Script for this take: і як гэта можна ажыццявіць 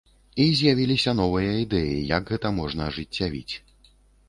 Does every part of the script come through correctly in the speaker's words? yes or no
no